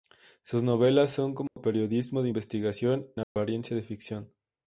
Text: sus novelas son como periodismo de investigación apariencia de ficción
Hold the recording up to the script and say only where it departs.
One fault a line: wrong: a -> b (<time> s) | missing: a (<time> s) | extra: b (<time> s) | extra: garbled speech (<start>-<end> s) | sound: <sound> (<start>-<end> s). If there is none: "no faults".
sound: dropout (1.5-1.6 s)
sound: dropout (3.2-3.4 s)